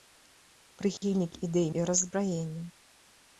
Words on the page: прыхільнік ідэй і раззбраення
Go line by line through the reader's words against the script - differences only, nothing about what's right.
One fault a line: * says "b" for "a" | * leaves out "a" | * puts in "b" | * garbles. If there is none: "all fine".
all fine